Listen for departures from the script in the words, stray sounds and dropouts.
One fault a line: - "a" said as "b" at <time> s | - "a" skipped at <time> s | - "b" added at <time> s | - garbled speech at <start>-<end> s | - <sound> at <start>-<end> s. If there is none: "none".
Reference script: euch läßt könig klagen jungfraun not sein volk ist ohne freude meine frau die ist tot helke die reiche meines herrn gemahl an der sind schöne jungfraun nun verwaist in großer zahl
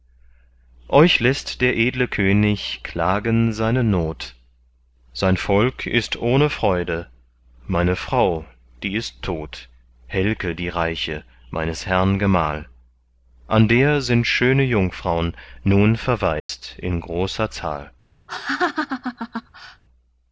- "der edle" added at 1.6 s
- "jungfraun" said as "seine" at 3.5 s
- dropout at 16.4-16.5 s
- laugh at 18.3-19.8 s